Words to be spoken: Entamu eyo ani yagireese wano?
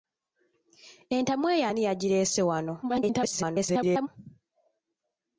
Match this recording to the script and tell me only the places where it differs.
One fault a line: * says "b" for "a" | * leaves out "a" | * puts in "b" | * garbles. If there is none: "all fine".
* garbles